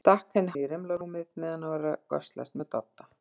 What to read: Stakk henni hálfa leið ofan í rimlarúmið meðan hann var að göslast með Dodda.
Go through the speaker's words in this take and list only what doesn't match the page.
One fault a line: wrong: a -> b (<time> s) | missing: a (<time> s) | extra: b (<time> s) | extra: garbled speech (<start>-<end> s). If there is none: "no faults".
missing: hálfa leið ofan (0.5 s)